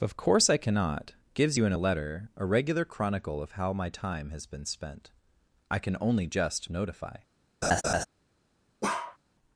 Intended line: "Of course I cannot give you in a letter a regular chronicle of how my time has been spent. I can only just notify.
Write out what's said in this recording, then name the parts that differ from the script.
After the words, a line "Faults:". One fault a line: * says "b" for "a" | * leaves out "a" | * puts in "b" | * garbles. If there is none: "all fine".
"Of course I cannot gives you in a letter a regular chronicle of how my time has been spent. I can only just notify.
Faults:
* says "gives" for "give"